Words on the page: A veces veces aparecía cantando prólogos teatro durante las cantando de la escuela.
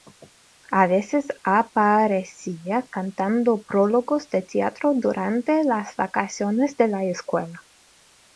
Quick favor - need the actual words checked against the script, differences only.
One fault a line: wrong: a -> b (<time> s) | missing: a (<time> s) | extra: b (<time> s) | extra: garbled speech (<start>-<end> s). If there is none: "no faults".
missing: veces (1.3 s)
extra: de (4.3 s)
wrong: cantando -> vacaciones (6.0 s)